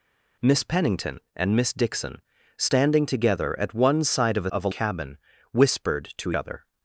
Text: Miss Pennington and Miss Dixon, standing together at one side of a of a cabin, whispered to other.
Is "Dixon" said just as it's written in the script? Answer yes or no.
yes